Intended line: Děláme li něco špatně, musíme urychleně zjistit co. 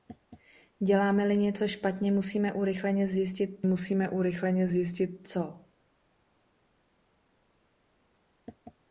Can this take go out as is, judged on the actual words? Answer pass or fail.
fail